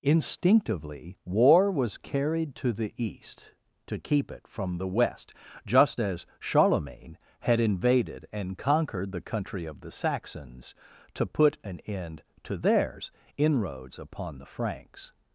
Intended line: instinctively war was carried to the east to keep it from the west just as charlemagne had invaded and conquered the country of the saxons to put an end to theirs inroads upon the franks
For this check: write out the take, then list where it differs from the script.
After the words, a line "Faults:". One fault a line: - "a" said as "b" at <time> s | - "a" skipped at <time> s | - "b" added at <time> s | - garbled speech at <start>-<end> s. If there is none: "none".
instinctively war was carried to the east to keep it from the west just as charlemagne had invaded and conquered the country of the saxons to put an end to theirs inroads upon the franks
Faults:
none